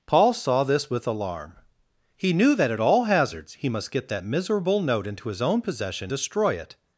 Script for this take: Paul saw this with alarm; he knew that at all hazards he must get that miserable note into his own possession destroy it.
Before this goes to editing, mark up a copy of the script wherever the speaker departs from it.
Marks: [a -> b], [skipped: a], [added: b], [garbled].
Paul saw this with alarm; he knew that at all hazards he must get that miserable note into his own possession destroy it.